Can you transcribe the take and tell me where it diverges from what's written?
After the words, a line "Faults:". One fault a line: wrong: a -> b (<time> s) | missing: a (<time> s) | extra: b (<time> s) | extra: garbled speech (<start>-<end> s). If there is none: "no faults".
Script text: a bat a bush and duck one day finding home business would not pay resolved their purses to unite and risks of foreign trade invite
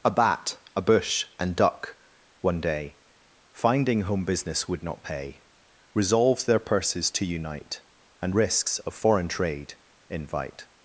a bat a bush and duck one day finding home business would not pay resolved their purses to unite and risks of foreign trade invite
Faults:
no faults